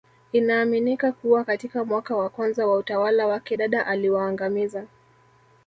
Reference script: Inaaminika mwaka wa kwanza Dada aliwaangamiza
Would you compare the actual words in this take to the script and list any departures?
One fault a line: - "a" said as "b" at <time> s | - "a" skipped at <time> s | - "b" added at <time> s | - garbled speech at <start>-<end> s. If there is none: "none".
- "kuwa katika" added at 1.1 s
- "wa utawala wake" added at 2.7 s